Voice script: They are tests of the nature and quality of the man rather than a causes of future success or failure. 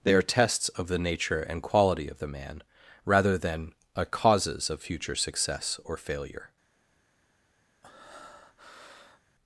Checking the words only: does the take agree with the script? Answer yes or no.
yes